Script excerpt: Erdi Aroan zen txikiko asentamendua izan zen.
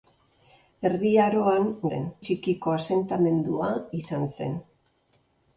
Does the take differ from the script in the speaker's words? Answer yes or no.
no